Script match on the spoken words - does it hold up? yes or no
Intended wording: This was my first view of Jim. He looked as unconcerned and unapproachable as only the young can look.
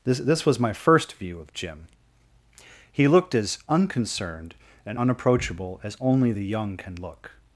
no